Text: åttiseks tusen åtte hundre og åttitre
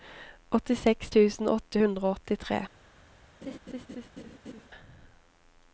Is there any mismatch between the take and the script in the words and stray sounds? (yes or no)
yes